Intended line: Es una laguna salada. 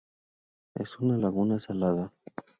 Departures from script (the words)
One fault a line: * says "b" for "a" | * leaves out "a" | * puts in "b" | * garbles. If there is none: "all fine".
all fine